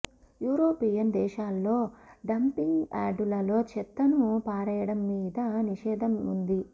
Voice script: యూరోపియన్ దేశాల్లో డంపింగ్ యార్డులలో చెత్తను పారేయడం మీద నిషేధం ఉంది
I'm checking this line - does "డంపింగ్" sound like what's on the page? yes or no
yes